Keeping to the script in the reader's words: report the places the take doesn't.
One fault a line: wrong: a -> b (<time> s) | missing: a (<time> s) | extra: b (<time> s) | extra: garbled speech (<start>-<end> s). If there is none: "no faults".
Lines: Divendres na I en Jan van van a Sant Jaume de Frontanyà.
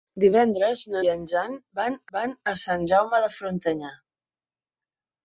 no faults